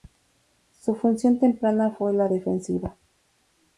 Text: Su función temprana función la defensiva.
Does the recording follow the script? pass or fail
fail